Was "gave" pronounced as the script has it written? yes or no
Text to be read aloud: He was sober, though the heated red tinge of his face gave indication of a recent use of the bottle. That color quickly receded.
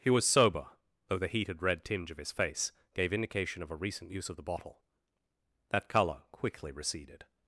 yes